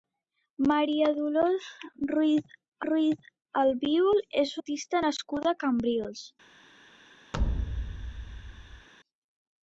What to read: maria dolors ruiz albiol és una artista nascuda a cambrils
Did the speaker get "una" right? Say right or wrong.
wrong